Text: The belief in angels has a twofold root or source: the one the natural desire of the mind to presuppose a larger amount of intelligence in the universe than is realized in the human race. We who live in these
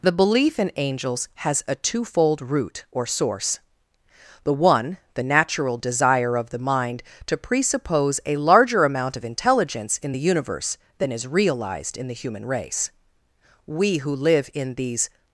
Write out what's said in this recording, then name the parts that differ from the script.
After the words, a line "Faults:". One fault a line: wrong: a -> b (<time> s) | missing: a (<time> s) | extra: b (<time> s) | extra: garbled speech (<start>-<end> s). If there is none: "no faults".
The belief in angels has a twofold root or source: the one the natural desire of the mind to presuppose a larger amount of intelligence in the universe than is realized in the human race. We who live in these
Faults:
no faults